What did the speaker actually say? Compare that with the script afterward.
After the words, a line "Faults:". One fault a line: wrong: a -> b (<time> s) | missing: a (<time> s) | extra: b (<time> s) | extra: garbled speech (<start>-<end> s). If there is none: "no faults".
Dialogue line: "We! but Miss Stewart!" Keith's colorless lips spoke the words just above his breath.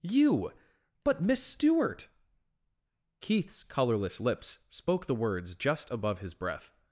"You! but Miss Stewart!" Keith's colorless lips spoke the words just above his breath.
Faults:
wrong: We -> You (0.0 s)